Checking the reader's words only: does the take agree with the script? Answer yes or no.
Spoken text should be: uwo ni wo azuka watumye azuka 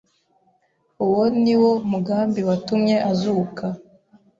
no